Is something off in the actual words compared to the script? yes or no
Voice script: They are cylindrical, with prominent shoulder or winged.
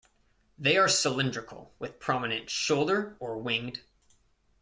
no